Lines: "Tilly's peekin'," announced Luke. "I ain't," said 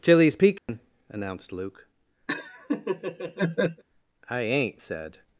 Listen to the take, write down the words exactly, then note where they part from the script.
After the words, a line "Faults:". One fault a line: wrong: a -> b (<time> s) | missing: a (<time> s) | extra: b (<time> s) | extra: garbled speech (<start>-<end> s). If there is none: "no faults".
"Tilly's peekin'," announced Luke. "I ain't," said
Faults:
no faults